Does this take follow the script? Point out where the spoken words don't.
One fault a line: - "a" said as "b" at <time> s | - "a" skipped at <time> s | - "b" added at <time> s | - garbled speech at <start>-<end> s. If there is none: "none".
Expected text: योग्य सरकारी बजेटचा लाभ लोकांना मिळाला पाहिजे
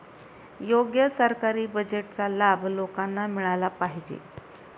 none